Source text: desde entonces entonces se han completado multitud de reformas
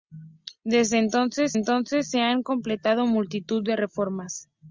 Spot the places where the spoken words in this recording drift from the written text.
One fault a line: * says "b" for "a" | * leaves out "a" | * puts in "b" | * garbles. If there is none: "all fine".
all fine